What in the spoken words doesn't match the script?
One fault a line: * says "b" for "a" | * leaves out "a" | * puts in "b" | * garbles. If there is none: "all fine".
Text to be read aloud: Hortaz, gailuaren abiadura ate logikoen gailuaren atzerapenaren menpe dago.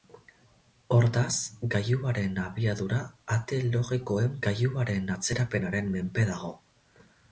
all fine